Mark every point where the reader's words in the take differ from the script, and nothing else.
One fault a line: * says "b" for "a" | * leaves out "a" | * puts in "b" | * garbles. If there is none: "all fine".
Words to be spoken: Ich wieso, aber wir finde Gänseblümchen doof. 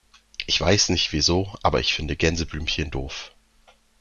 * puts in "weiß nicht"
* says "ich" for "wir"